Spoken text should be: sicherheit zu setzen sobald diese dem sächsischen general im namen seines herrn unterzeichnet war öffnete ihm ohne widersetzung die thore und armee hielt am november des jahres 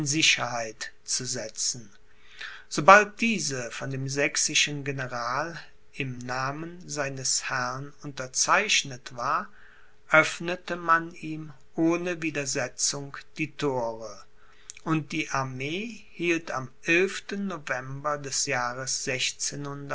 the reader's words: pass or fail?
fail